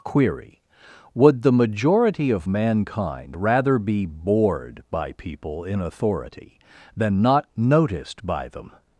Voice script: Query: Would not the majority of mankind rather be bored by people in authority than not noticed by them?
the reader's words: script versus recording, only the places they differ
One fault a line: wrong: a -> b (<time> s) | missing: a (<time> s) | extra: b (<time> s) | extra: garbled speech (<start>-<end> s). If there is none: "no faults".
missing: not (1.4 s)